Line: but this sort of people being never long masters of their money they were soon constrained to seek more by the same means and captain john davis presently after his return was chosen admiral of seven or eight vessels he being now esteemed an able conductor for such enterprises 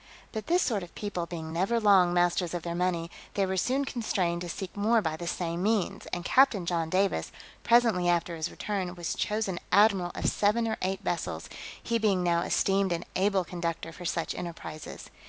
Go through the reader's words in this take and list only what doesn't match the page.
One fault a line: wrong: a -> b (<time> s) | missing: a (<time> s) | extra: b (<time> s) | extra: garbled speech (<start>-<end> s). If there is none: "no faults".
no faults